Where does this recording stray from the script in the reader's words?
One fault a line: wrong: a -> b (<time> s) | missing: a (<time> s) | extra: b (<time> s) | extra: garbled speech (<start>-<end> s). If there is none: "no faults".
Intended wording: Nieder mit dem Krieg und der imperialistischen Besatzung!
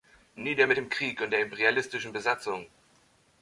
no faults